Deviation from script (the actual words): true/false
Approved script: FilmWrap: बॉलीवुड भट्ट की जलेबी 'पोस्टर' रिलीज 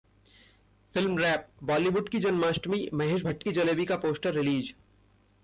true